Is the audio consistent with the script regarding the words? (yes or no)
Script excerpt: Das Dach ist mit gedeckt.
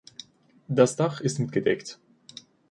yes